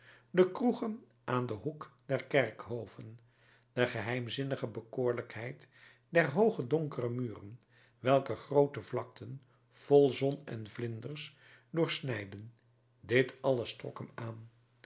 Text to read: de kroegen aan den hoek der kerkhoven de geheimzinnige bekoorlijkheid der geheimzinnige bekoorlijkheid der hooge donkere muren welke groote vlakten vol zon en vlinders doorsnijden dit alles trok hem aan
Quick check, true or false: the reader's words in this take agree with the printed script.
false